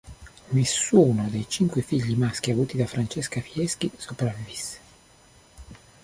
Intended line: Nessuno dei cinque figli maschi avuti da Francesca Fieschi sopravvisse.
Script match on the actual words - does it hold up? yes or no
yes